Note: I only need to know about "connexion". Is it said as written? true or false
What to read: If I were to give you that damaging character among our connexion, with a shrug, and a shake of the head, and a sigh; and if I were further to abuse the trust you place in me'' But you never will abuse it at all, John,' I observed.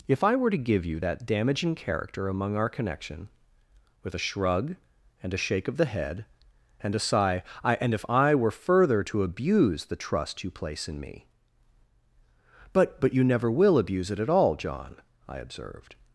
false